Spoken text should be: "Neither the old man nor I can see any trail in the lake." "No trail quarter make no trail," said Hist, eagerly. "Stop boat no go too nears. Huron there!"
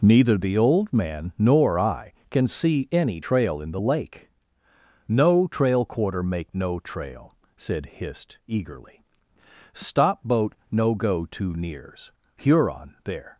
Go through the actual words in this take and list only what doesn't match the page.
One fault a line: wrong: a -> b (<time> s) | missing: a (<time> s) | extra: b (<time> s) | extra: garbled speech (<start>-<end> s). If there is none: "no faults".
no faults